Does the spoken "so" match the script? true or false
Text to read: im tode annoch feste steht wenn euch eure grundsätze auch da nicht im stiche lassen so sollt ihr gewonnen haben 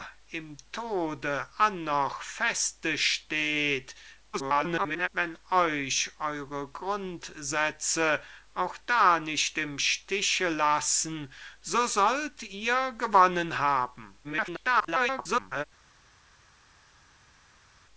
true